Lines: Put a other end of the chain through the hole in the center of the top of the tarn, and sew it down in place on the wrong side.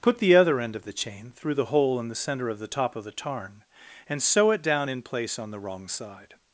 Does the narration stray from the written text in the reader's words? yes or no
yes